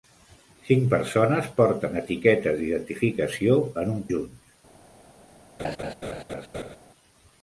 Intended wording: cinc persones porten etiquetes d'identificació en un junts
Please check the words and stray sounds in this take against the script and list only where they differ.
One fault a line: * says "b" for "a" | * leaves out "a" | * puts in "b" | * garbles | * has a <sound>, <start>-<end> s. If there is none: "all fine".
* has a laugh, 5.6-6.8 s